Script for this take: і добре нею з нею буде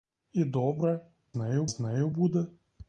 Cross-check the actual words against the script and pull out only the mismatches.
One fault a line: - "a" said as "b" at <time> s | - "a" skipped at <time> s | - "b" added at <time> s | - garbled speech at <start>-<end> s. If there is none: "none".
none